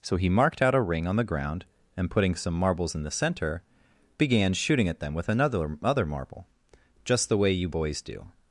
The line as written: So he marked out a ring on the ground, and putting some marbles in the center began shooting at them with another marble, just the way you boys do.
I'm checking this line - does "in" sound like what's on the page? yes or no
yes